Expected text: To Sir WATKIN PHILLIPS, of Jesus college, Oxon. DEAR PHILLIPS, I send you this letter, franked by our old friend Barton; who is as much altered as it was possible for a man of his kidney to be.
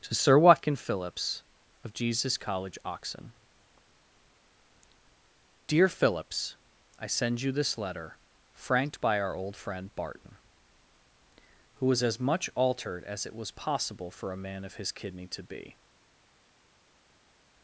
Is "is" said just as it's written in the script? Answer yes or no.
no